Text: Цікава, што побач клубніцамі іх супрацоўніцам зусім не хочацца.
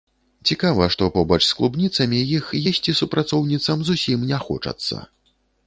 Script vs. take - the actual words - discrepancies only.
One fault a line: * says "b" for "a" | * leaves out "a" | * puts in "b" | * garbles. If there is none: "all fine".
* puts in "з"
* puts in "есці"